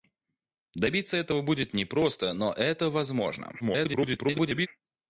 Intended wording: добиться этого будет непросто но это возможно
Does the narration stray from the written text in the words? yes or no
yes